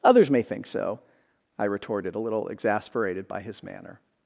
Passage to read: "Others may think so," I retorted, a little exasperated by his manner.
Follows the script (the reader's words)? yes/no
yes